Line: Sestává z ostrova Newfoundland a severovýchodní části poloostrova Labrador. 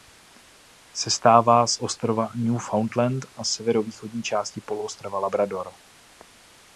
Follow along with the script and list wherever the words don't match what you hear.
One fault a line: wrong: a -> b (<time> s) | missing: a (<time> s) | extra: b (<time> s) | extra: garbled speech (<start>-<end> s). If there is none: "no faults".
no faults